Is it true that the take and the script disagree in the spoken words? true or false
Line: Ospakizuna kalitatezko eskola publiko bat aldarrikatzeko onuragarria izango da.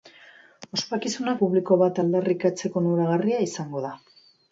true